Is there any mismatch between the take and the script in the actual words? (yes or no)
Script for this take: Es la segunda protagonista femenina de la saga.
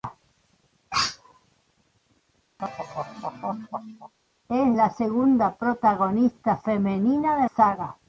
yes